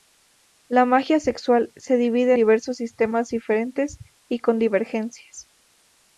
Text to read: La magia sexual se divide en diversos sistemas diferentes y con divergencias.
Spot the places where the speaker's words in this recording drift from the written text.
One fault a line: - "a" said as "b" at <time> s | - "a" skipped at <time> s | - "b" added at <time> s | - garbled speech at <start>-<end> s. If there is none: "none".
- "en" skipped at 2.3 s